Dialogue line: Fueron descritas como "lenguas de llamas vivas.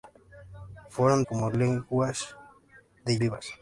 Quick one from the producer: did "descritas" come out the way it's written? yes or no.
no